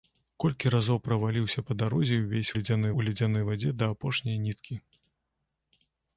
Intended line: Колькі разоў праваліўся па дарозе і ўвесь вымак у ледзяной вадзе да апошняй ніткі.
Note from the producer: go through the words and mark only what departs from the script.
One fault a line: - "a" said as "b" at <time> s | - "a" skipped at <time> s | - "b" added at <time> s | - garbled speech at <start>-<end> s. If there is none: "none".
- "вымак" said as "ледзяной" at 2.6 s